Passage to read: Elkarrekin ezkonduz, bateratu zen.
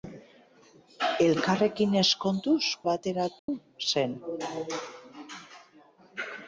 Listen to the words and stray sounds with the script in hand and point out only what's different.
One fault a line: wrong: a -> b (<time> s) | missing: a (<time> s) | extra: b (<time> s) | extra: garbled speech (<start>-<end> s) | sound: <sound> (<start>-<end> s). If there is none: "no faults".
sound: dropout (3.4-3.5 s)